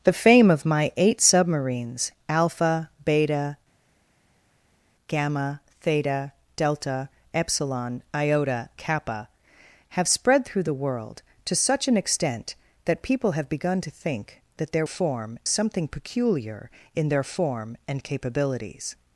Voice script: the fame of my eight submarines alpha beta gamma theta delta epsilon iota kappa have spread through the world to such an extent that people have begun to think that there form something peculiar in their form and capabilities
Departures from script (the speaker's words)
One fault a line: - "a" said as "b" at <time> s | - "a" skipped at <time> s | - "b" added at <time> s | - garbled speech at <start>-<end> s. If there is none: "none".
none